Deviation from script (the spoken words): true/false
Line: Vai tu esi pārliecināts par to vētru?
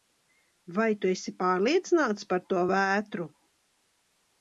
false